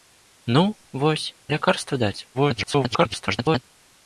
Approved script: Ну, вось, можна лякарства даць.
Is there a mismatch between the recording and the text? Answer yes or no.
yes